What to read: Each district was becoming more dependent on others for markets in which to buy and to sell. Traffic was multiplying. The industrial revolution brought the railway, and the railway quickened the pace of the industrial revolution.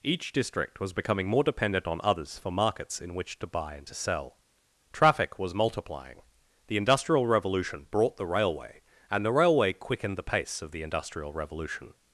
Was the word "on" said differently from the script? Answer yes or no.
no